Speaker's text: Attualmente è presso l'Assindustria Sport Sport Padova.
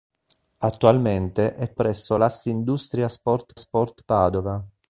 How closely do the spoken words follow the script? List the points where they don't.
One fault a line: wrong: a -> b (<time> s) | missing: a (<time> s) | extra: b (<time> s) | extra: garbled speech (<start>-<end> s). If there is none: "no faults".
no faults